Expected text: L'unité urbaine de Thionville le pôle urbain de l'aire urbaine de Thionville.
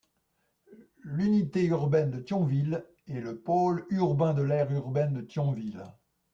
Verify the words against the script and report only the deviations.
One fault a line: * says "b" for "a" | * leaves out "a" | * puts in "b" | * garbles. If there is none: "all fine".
* puts in "est"